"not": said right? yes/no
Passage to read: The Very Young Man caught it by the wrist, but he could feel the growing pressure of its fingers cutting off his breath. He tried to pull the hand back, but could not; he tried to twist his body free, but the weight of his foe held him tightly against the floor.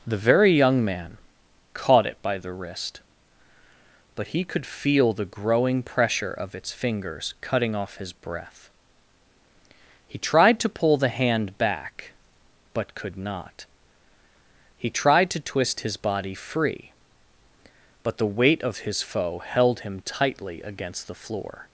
yes